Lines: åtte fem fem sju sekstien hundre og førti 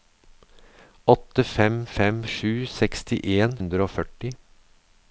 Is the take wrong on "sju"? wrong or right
right